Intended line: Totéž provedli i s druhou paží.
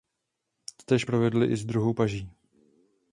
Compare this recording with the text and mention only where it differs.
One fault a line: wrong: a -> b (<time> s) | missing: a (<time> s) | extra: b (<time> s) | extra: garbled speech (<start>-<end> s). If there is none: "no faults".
no faults